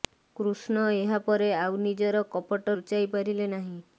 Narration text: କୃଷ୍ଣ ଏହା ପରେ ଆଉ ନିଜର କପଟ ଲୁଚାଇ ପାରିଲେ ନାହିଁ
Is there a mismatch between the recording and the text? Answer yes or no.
no